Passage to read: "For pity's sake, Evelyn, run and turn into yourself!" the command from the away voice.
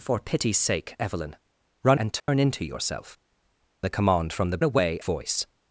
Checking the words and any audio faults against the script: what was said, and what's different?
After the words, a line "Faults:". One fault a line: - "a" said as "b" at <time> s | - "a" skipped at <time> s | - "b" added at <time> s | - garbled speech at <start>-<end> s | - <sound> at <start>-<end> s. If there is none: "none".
"For pity's sake, Evelyn, run and turn into yourself!" the command from the away voice.
Faults:
- dropout at 2.2-2.3 s